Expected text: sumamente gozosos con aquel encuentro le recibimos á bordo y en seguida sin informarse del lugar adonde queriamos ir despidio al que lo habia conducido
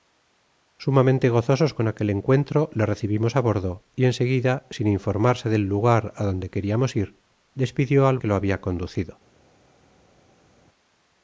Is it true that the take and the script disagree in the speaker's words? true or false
false